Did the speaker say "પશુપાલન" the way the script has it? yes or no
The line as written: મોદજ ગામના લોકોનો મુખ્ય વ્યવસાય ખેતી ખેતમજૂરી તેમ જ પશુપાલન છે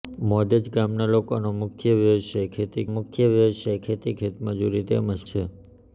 no